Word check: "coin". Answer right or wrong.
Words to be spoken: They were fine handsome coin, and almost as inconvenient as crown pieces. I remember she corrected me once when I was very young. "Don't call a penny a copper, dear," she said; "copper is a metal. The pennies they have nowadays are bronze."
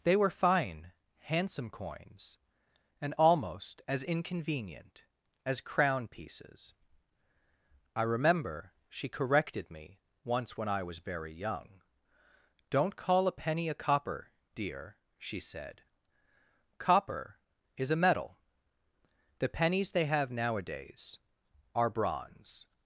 wrong